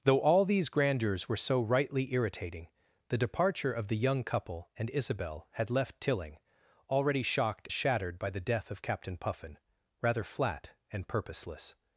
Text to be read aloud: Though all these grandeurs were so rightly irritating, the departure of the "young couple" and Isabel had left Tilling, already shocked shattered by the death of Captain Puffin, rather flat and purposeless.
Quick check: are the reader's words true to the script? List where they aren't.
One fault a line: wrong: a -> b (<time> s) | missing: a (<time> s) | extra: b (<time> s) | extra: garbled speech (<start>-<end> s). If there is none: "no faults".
no faults